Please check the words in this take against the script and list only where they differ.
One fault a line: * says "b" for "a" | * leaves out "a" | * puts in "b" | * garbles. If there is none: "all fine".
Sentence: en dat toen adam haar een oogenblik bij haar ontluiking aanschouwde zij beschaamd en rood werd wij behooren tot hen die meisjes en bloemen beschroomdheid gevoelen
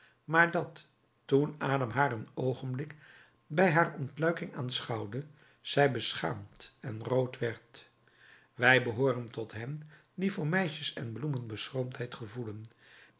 * says "maar" for "en"
* puts in "voor"